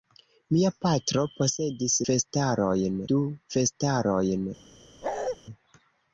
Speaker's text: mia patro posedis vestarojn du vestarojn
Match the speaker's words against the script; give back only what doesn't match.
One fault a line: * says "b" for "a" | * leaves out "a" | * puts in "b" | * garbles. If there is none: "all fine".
all fine